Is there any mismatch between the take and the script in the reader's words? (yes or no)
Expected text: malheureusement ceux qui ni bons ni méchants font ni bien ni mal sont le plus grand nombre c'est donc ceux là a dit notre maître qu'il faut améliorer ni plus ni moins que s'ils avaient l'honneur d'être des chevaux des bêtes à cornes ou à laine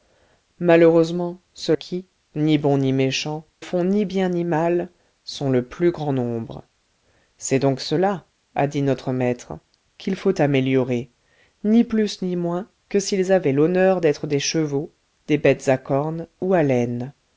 no